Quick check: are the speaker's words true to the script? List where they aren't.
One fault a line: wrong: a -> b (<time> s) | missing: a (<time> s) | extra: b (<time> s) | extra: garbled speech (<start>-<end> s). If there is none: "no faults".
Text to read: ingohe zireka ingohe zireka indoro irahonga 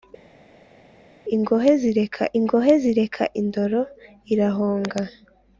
no faults